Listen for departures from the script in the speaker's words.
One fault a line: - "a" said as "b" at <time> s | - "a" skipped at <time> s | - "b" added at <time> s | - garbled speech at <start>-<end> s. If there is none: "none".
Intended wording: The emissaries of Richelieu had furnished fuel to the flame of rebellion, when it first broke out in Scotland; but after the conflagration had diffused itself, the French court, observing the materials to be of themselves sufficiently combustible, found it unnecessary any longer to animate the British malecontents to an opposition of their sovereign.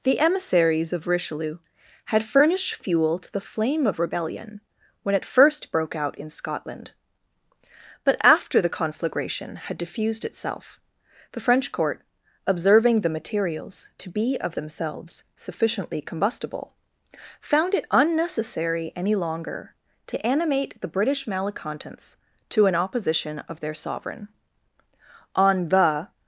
- "On the" added at 25.3 s